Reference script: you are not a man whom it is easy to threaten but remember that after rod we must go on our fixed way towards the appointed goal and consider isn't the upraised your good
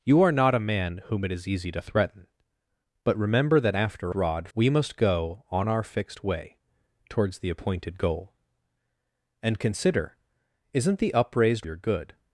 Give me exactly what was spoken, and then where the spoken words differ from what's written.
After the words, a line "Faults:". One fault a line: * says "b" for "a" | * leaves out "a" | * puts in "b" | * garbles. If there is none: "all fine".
you are not a man whom it is easy to threaten but remember that after rod we must go on our fixed way towards the appointed goal and consider isn't the upraised your good
Faults:
all fine